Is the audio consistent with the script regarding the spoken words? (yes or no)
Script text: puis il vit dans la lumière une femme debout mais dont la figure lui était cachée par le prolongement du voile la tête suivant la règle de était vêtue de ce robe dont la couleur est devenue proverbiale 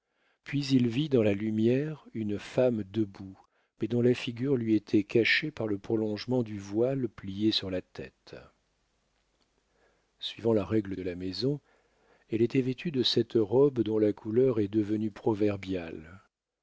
no